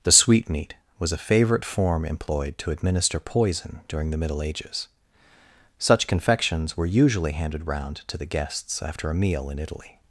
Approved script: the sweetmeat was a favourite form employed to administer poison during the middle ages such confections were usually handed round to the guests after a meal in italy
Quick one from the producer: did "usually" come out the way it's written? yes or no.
yes